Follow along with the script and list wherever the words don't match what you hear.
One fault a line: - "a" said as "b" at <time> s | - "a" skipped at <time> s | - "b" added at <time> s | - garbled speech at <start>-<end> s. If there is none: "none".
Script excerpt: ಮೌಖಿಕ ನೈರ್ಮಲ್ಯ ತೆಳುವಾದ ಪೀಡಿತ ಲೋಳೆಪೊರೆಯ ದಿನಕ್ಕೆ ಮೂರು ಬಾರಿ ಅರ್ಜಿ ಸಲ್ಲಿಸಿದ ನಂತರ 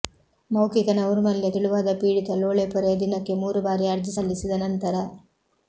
none